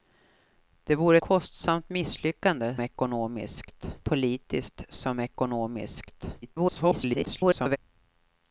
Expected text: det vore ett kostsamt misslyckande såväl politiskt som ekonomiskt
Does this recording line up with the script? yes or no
no